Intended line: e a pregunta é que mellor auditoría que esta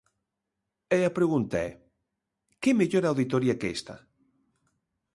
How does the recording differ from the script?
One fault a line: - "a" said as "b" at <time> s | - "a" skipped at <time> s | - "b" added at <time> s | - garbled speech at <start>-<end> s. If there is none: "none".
none